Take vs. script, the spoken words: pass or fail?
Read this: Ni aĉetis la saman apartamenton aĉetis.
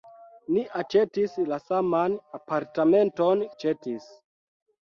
pass